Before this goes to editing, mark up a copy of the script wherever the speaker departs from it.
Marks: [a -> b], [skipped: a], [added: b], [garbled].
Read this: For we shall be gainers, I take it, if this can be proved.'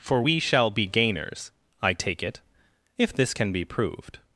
For we shall be gainers, I take it, if this can be proved.'